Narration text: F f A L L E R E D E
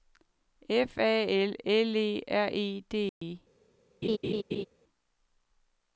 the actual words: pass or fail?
fail